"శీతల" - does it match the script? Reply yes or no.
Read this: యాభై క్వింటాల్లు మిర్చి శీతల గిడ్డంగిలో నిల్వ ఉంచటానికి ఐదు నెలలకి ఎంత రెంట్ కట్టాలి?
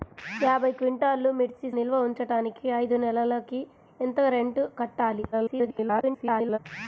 no